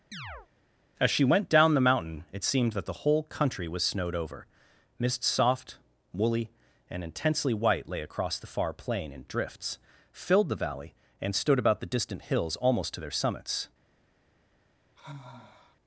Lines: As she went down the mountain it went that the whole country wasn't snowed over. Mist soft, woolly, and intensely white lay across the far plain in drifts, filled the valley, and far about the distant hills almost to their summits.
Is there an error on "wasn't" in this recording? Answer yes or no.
yes